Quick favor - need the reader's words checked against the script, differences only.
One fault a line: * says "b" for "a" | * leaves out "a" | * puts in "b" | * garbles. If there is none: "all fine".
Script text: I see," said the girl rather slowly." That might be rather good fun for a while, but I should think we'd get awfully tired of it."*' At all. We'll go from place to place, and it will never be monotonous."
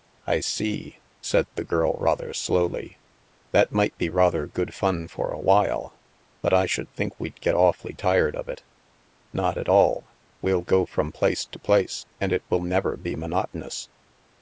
* puts in "Not"